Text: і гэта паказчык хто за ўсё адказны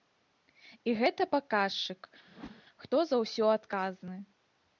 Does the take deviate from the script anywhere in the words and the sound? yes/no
yes